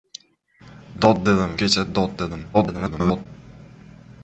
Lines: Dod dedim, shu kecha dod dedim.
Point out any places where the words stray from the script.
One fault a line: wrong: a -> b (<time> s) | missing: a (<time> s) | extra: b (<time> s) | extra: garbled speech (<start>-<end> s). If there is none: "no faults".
missing: shu (1.5 s)
extra: garbled speech (2.5-3.3 s)